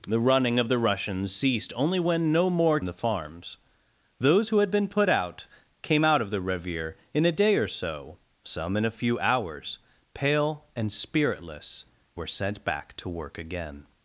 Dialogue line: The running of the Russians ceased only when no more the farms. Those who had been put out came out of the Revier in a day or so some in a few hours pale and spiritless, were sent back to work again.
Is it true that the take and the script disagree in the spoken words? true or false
false